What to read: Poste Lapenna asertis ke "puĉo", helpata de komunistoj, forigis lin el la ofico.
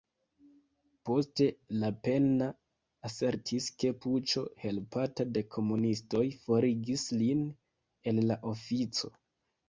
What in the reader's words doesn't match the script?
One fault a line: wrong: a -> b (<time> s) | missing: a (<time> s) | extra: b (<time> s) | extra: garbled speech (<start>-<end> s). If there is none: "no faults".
no faults